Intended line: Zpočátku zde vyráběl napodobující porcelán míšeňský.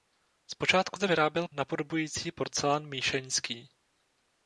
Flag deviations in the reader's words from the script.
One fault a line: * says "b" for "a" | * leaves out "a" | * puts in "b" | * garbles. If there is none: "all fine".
all fine